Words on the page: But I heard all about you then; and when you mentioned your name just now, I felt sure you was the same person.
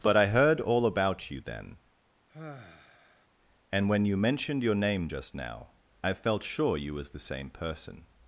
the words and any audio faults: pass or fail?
fail